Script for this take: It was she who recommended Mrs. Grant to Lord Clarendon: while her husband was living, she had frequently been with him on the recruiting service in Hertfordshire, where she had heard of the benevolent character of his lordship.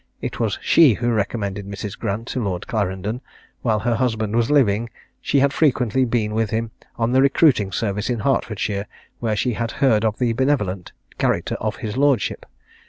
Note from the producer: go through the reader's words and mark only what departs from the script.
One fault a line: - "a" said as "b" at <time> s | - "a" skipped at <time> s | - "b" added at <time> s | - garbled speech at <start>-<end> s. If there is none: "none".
none